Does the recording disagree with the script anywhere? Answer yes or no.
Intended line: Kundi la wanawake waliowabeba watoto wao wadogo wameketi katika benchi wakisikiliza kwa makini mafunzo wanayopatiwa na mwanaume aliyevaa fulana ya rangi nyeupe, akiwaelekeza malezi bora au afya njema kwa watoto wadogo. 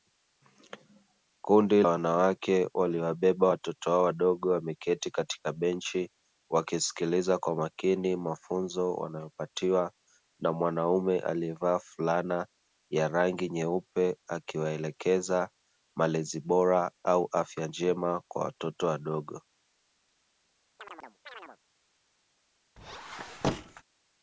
yes